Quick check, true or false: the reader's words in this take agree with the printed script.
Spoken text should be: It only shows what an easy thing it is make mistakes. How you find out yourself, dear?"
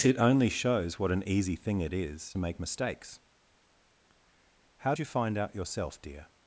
true